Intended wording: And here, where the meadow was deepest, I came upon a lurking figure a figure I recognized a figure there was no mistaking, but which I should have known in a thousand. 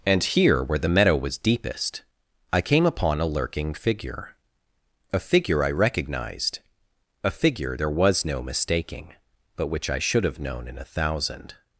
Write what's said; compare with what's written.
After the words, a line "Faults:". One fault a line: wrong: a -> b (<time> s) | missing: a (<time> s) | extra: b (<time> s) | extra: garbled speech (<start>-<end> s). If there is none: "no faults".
And here, where the meadow was deepest, I came upon a lurking figure a figure I recognized a figure there was no mistaking, but which I should have known in a thousand.
Faults:
no faults